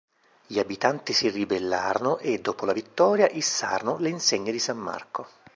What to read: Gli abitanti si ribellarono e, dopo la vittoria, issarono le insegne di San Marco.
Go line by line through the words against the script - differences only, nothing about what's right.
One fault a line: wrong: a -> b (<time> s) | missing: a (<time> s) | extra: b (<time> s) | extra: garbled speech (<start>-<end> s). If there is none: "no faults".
no faults